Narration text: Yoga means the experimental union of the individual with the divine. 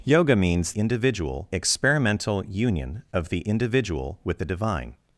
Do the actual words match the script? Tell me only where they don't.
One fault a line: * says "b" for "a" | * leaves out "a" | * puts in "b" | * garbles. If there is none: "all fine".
* says "individual" for "the"